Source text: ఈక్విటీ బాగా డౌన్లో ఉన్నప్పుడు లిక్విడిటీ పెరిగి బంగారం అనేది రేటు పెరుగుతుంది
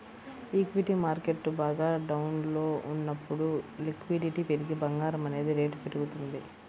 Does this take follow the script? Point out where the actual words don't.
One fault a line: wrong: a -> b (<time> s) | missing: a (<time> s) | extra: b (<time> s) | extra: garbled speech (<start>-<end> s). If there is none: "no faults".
extra: మార్కెట్టు (1.0 s)